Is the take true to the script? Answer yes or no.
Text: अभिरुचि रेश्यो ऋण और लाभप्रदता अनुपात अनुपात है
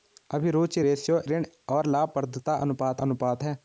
yes